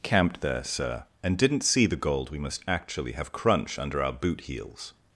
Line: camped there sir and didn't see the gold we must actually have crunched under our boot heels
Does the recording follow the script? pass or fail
fail